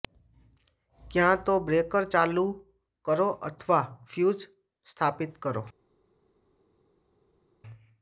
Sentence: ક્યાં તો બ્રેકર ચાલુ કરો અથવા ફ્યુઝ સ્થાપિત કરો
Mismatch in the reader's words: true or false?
false